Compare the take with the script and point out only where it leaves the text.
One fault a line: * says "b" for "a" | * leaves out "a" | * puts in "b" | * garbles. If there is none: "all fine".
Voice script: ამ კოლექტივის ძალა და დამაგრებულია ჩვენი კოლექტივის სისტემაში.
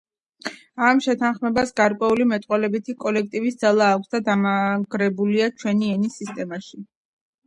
* puts in "შეთანხმებას გარკვეული მეტყველებითი"
* puts in "აქვს"
* says "ენის" for "კოლექტივის"